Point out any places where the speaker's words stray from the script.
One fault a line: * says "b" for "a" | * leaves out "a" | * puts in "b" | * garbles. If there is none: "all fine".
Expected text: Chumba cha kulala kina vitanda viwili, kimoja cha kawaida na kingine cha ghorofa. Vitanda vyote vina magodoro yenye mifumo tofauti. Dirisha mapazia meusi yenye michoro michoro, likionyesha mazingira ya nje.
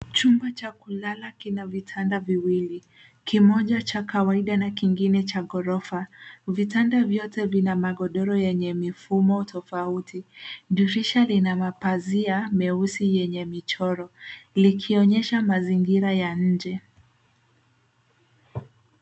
* puts in "lina"
* leaves out "michoro"